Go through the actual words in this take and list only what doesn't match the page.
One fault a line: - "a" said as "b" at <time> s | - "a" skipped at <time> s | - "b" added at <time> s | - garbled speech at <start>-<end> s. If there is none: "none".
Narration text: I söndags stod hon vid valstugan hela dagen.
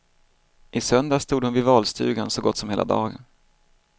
- "så gott som" added at 2.3 s